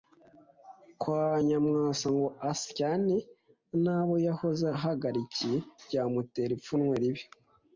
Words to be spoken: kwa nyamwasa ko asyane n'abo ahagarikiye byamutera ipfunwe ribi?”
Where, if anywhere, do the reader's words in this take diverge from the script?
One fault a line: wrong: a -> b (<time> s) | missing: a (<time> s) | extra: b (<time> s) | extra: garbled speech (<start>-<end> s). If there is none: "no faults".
wrong: ko -> ngo (2.2 s)
extra: yahoze (4.3 s)